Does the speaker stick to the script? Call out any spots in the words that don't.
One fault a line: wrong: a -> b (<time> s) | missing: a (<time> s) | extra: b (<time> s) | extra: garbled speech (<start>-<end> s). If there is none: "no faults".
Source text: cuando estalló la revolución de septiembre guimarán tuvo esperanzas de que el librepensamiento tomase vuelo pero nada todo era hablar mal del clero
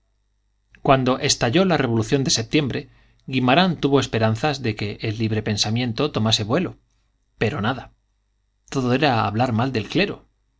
no faults